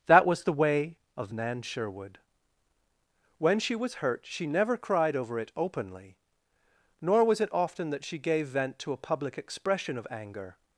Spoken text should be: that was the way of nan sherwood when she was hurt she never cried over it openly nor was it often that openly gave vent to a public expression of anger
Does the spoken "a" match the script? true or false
true